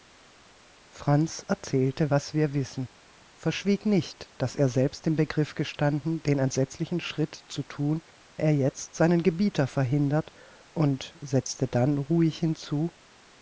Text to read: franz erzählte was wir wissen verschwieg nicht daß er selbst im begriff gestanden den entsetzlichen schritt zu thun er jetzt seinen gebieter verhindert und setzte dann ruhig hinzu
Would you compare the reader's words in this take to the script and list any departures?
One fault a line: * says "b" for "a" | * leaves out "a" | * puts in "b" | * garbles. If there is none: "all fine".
all fine